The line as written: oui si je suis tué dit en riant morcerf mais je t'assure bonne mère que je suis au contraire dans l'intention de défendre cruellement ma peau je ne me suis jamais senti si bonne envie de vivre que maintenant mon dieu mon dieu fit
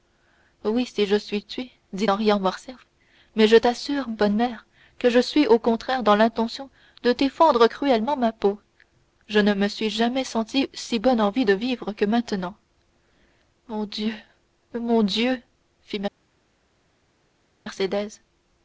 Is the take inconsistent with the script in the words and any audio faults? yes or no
no